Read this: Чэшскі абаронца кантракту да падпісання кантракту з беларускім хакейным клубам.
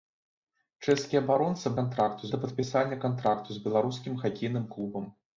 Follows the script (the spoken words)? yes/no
yes